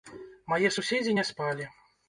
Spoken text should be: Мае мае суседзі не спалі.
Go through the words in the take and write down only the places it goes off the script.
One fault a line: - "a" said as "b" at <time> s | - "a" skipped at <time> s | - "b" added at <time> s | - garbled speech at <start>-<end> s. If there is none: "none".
- "мае" skipped at 0.7 s